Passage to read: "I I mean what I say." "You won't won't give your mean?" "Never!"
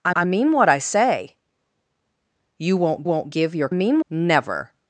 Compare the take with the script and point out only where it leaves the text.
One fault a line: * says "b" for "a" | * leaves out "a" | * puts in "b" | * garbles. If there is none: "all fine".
all fine